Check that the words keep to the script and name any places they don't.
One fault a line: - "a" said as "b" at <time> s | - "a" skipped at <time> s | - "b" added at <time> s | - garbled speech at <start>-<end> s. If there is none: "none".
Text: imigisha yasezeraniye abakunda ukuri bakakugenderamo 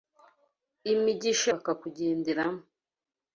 - "yasezeraniye abakunda ukuri" skipped at 1.5 s